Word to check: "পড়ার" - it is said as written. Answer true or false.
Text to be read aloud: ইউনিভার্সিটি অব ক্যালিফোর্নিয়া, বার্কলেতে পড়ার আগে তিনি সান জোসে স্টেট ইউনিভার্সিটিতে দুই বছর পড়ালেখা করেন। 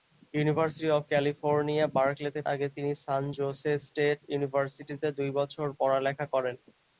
false